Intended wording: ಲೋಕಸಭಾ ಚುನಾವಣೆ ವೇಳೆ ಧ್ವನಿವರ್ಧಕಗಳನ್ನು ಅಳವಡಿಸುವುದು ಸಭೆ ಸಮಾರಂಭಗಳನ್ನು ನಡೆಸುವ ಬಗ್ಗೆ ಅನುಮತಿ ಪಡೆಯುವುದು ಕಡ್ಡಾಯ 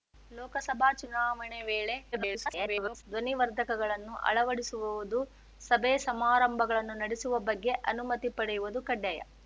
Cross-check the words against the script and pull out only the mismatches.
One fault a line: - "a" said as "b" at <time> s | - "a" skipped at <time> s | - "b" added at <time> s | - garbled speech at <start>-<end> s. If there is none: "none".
- garbled speech at 2.1-3.0 s